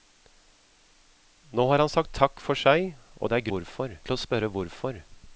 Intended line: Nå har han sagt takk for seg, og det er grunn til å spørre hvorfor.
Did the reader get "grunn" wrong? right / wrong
wrong